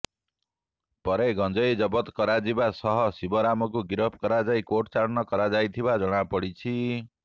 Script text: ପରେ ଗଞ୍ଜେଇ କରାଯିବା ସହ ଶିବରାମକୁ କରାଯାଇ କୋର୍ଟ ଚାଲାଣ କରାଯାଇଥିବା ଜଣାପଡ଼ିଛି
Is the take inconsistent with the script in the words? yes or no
yes